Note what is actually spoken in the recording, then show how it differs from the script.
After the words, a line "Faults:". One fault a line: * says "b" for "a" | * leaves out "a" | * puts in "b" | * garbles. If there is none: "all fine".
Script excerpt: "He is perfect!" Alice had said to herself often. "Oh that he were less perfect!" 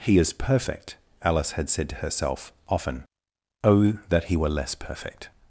"He is perfect!" Alice had said to herself often. "Oh that he were less perfect!"
Faults:
all fine